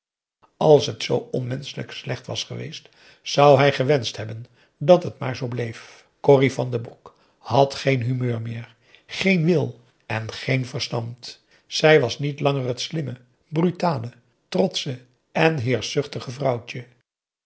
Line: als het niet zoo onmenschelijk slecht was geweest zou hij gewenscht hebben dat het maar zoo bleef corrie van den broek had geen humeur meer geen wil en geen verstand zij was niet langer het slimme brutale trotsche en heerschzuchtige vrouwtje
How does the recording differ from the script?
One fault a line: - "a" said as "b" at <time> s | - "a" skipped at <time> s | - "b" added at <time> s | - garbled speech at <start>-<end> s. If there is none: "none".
- "niet" skipped at 1.0 s